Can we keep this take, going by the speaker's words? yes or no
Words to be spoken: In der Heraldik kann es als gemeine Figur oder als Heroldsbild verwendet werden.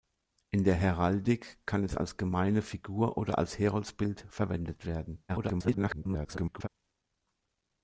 no